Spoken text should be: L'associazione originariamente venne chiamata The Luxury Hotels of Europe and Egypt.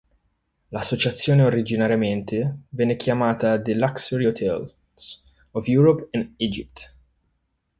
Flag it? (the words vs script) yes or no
no